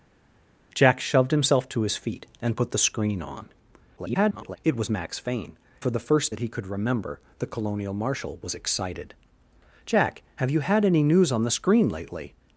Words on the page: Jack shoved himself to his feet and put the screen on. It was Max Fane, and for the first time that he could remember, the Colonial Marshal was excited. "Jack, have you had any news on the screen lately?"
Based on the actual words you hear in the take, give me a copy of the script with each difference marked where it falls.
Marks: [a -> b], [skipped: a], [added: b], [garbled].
Jack shoved himself to his feet and put the screen on. [garbled] It was Max Fane, [skipped: and] for the first [skipped: time] that he could remember, the Colonial Marshal was excited. "Jack, have you had any news on the screen lately?"